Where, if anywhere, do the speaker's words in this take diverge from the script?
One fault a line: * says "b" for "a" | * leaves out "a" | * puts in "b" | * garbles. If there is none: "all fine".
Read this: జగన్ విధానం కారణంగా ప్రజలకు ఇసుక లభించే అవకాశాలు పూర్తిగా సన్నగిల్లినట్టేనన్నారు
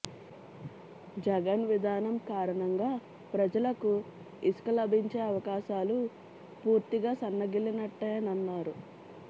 all fine